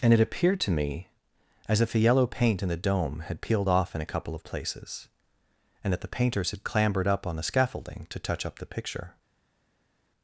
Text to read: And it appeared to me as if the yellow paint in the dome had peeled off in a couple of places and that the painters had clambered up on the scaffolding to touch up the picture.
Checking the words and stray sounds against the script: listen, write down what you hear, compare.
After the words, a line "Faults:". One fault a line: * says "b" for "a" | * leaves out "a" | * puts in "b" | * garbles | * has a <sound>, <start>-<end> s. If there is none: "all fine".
And it appeared to me as if the yellow paint in the dome had peeled off in a couple of places and that the painters had clambered up on the scaffolding to touch up the picture.
Faults:
all fine